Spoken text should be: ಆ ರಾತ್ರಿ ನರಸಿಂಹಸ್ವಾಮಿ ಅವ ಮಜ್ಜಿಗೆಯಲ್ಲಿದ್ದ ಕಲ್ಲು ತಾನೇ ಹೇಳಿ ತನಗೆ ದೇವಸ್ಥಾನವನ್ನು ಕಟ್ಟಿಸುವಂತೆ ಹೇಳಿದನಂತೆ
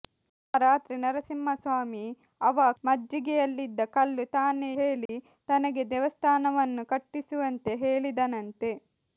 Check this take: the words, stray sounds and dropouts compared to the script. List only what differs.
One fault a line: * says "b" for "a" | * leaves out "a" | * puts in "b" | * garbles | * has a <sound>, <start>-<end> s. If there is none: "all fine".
* has a dropout, 5.1-5.1 s